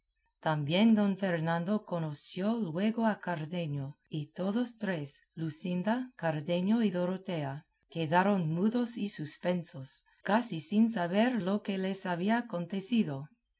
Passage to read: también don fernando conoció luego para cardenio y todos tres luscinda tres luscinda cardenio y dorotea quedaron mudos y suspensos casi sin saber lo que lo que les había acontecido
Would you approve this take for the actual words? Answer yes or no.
no